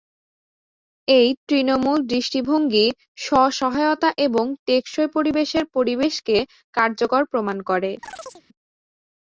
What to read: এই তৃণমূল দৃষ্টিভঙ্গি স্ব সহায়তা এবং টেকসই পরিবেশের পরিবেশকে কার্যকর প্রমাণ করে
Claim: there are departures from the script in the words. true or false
false